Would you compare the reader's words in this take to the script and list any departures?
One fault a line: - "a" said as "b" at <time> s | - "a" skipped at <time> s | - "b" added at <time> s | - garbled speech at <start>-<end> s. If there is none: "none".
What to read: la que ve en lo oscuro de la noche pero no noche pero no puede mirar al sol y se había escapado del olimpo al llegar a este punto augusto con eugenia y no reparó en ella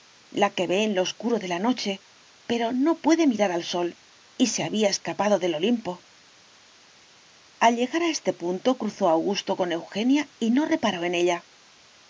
- "noche pero no" skipped at 3.0 s
- "cruzó" added at 8.8 s